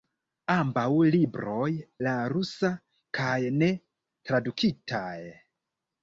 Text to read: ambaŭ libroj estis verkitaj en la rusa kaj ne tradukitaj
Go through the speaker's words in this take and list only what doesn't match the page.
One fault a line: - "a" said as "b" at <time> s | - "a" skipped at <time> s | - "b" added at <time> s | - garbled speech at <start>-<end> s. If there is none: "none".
- "estis verkitaj en" skipped at 1.7 s